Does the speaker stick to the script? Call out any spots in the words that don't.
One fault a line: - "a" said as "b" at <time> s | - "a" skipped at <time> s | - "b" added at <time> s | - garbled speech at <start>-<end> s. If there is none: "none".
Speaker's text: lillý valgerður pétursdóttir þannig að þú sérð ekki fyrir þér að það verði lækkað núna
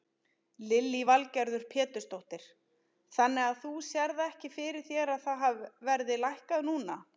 none